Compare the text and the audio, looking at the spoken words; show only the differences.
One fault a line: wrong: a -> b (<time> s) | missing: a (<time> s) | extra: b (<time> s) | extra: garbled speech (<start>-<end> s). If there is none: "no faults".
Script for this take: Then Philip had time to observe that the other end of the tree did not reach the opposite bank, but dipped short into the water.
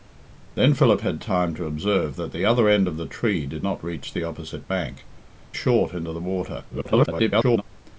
missing: but dipped (5.0 s)
extra: garbled speech (6.7-7.6 s)